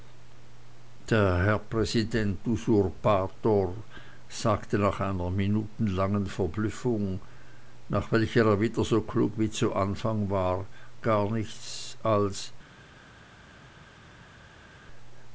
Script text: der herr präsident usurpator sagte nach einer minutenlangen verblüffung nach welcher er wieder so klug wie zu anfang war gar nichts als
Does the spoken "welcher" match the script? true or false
true